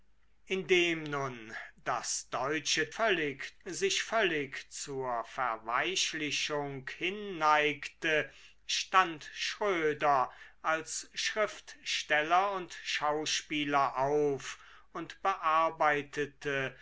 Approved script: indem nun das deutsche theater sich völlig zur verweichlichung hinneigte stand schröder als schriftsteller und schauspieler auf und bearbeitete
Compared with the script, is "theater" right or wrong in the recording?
wrong